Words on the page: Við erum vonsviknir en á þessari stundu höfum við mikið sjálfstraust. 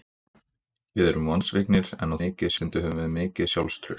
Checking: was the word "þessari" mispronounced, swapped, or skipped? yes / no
yes